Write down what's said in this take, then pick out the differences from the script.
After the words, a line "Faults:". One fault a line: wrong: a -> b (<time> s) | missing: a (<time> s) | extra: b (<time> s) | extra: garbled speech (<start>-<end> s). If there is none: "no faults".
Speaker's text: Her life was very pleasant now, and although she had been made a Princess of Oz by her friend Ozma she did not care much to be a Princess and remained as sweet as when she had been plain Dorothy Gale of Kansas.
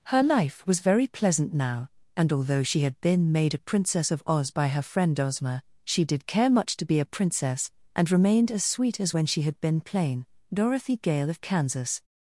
Her life was very pleasant now, and although she had been made a Princess of Oz by her friend Ozma she did care much to be a Princess and remained as sweet as when she had been plain Dorothy Gale of Kansas.
Faults:
missing: not (6.3 s)